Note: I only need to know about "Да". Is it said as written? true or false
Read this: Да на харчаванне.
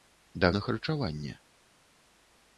true